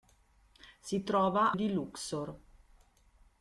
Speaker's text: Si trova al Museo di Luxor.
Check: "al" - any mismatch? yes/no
yes